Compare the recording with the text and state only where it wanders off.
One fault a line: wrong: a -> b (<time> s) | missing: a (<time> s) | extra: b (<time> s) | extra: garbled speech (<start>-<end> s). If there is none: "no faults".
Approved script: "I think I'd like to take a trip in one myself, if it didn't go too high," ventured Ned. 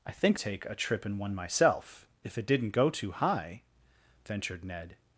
missing: I'd like to (0.4 s)